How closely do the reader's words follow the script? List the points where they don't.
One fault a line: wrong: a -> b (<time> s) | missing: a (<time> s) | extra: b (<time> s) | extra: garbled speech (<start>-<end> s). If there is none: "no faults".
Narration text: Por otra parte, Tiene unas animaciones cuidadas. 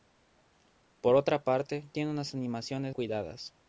no faults